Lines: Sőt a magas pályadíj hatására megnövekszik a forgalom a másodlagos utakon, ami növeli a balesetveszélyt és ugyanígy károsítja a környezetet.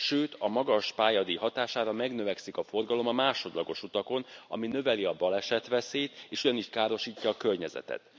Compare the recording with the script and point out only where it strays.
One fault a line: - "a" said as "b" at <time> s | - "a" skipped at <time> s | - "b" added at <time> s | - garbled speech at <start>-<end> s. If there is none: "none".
none